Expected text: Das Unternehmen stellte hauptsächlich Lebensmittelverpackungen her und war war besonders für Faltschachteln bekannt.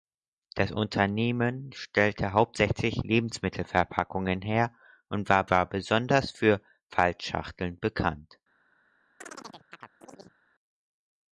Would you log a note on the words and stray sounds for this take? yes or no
yes